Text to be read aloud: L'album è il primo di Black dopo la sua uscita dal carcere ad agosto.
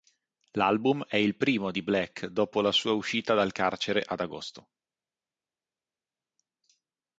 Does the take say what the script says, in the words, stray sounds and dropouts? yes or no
yes